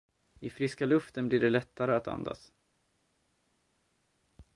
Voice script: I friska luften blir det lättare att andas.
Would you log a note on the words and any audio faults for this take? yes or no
no